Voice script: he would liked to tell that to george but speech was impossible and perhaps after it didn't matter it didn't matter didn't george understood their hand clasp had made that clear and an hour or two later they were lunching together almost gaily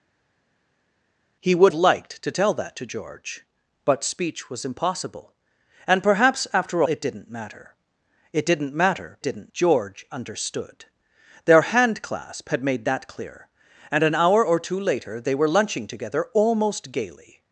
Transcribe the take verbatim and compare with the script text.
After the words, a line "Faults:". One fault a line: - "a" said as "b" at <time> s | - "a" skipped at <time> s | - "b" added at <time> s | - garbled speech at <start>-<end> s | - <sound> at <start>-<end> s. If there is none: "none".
he would liked to tell that to george but speech was impossible and perhaps after it didn't matter it didn't matter didn't george understood their hand clasp had made that clear and an hour or two later they were lunching together almost gaily
Faults:
none